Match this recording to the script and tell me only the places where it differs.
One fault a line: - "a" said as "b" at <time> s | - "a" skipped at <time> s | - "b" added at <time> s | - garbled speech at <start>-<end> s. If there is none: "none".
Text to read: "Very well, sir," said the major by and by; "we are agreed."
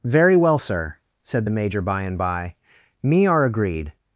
- "we" said as "me" at 3.0 s